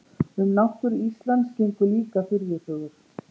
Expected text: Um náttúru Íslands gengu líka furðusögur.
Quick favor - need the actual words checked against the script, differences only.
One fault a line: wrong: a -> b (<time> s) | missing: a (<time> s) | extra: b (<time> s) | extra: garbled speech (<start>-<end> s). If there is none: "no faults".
no faults